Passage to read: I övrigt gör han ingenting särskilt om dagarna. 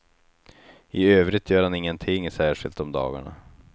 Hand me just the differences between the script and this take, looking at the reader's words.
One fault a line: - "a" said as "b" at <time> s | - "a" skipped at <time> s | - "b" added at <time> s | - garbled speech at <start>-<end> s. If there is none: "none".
none